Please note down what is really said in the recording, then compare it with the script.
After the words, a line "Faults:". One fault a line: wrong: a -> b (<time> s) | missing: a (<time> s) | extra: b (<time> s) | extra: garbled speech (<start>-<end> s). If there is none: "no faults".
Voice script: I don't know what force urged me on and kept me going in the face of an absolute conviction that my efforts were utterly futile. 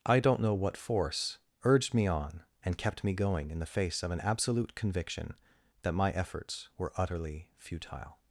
I don't know what force urged me on and kept me going in the face of an absolute conviction that my efforts were utterly futile.
Faults:
no faults